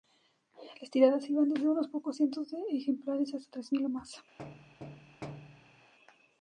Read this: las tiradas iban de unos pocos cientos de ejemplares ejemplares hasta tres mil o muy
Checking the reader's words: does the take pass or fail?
fail